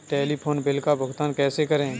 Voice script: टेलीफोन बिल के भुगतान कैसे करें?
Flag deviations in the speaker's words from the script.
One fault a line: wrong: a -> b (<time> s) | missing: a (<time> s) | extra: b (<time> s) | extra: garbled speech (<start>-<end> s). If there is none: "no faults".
wrong: के -> का (0.8 s)